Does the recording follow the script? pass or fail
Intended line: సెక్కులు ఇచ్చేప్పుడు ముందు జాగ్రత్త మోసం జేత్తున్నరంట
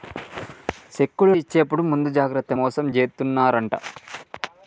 pass